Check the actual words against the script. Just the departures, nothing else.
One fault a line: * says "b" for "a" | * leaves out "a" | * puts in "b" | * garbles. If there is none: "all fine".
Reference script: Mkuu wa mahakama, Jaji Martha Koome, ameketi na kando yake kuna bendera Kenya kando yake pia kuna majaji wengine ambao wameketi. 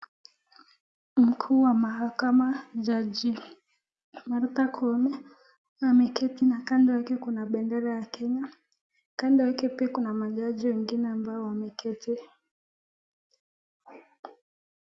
* puts in "ya"